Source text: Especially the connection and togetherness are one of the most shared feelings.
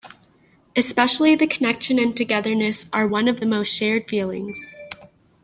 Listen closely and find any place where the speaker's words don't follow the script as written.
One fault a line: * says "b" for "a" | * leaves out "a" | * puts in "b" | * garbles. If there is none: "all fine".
all fine